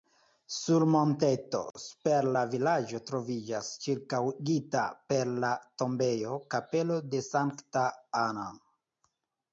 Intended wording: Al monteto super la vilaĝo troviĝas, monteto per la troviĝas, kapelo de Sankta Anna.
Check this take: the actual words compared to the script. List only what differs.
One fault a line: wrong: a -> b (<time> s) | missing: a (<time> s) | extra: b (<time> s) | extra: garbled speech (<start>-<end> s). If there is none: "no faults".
wrong: Al -> Sur (0.5 s)
wrong: monteto -> ĉirkaŭigita (3.9 s)
wrong: troviĝas -> tombejo (5.8 s)